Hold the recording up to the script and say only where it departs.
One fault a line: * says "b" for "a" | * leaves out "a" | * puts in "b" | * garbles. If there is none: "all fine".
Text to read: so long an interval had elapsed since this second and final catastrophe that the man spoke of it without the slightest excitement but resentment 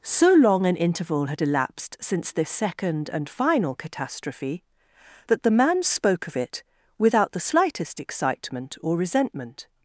* says "or" for "but"